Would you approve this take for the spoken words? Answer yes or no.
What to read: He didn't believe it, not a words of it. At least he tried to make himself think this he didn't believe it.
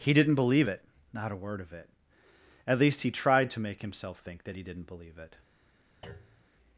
no